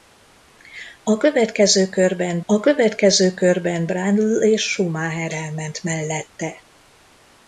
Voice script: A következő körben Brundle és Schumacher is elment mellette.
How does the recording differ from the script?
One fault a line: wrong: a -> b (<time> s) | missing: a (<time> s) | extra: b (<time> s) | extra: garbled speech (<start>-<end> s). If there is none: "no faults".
extra: a következő körben (2.5 s)
missing: is (5.3 s)